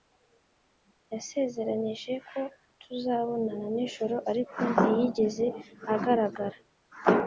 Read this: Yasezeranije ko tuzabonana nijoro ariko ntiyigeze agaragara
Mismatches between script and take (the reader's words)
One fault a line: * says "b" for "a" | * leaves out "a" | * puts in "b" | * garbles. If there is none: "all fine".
all fine